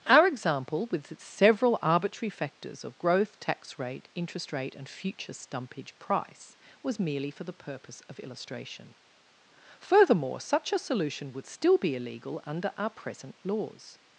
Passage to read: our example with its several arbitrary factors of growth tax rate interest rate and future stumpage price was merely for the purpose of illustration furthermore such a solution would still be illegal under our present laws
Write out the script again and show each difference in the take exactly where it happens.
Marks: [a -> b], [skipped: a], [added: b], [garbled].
our example with its several arbitrary factors of growth tax rate interest rate and future stumpage price was merely for the purpose of illustration furthermore such a solution would still be illegal under our present laws